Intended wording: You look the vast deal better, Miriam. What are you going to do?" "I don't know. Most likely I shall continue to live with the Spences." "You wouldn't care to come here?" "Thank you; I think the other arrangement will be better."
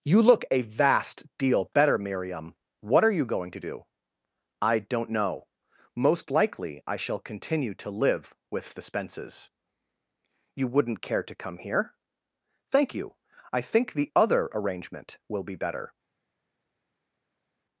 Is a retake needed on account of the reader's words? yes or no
yes